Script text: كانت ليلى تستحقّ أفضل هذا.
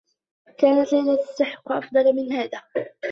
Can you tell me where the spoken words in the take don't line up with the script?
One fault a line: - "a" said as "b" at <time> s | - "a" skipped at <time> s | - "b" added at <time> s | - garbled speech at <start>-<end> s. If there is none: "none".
- "من" added at 2.1 s